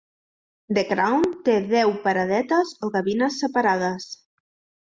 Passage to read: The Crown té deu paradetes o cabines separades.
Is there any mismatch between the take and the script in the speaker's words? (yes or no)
no